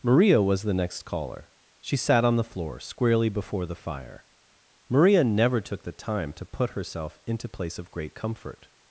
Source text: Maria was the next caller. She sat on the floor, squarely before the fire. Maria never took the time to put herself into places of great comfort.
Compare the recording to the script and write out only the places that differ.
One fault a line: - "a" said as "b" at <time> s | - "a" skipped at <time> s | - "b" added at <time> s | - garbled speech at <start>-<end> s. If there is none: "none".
- "places" said as "place" at 7.5 s